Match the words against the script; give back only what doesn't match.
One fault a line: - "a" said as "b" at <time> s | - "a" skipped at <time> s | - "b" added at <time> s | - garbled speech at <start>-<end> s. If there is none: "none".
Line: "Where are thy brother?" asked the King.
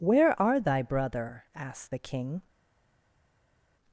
none